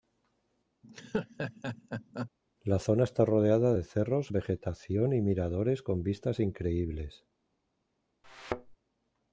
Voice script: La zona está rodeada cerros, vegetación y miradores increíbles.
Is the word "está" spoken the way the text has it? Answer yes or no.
yes